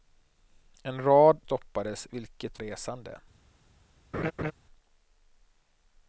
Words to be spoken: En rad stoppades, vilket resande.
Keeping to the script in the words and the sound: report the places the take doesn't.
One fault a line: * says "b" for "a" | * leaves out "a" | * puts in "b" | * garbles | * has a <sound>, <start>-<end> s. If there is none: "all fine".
* has a laugh, 4.1-4.5 s